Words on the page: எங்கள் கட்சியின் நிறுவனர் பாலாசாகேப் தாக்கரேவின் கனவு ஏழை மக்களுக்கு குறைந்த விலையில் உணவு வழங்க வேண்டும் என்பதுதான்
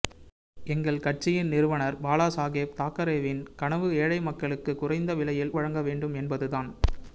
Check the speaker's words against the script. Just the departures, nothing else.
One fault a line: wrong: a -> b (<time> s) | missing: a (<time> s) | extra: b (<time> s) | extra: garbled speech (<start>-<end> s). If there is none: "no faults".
missing: உணவு (5.5 s)